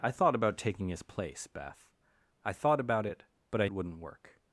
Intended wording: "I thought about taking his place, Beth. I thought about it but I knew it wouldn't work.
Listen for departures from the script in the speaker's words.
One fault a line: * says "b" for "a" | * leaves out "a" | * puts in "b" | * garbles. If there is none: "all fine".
* leaves out "knew"